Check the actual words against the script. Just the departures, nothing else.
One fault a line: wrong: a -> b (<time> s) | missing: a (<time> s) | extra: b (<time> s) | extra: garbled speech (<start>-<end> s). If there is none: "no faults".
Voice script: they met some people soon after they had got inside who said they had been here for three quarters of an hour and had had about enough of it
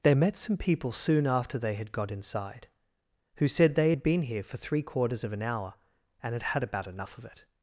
no faults